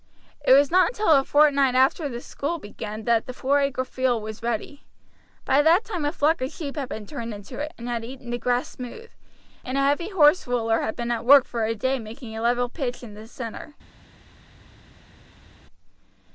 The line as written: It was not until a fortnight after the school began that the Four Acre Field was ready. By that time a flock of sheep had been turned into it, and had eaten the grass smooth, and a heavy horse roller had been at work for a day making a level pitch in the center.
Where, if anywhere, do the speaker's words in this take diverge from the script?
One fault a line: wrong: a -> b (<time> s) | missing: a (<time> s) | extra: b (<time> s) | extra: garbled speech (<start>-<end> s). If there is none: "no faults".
no faults